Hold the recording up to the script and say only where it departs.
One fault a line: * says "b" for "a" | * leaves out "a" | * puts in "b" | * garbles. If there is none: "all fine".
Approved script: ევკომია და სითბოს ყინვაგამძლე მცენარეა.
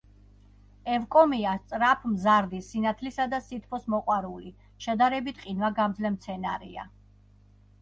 * puts in "სწრაფმზარდი სინათლისა"
* puts in "მოყვარული შედარებით"